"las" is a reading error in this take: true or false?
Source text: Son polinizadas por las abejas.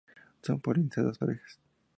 true